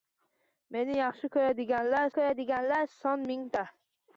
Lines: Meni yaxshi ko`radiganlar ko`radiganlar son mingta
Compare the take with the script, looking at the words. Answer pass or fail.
pass